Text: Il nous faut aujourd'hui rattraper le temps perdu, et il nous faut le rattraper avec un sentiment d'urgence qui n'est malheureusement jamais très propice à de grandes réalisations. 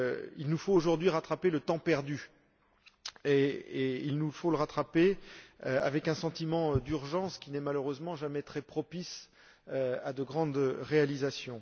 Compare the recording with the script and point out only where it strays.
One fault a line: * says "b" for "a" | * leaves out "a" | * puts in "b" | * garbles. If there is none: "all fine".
all fine